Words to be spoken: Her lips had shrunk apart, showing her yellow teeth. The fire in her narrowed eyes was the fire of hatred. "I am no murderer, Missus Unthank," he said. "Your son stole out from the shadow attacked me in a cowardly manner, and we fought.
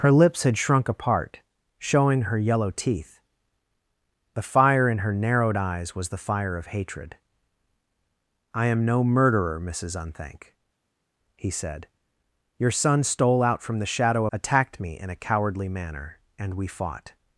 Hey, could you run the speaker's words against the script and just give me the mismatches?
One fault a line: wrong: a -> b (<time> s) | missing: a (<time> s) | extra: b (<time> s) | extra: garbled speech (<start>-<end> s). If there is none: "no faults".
no faults